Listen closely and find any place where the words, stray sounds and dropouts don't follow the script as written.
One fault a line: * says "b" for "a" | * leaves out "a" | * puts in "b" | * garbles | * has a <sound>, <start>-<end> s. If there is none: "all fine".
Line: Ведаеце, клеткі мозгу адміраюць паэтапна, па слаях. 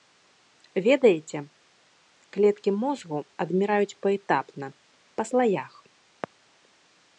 all fine